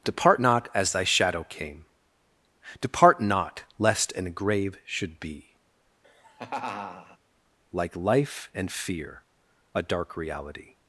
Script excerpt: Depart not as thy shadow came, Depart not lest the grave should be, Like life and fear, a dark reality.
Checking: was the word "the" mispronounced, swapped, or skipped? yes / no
yes